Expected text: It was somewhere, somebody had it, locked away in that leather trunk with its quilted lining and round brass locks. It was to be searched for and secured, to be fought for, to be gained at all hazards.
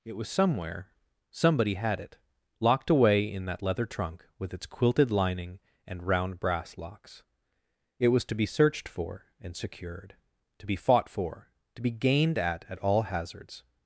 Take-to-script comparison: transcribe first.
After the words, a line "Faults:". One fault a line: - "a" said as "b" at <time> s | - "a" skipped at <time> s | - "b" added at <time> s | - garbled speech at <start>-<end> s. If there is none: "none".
It was somewhere, somebody had it, locked away in that leather trunk with its quilted lining and round brass locks. It was to be searched for and secured, to be fought for, to be gained at at all hazards.
Faults:
- "at" added at 12.7 s